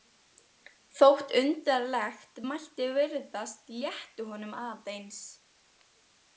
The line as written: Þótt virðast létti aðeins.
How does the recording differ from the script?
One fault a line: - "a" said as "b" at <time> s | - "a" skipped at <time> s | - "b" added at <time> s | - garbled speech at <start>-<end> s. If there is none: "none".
- "undarlegt mætti" added at 1.4 s
- "honum" added at 4.3 s